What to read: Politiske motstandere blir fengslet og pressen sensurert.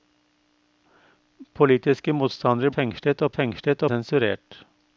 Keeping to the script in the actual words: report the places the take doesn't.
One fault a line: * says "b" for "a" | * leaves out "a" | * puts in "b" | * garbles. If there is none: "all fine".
* leaves out "blir"
* says "fengslet" for "pressen"